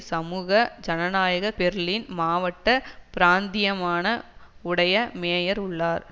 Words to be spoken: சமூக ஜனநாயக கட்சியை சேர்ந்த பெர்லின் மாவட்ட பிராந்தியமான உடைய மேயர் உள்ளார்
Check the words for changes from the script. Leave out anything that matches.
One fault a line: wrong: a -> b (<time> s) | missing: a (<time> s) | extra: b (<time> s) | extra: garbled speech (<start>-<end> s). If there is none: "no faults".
missing: கட்சியை சேர்ந்த (1.5 s)